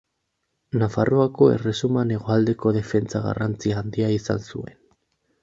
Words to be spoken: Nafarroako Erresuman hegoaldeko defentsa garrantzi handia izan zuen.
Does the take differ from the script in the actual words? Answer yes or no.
no